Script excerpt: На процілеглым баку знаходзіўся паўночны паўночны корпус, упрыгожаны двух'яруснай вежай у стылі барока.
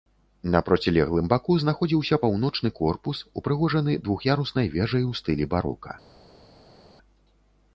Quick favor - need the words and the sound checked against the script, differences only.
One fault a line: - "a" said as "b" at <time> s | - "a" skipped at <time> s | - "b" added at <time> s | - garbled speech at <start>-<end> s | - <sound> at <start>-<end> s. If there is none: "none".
- "паўночны" skipped at 2.7 s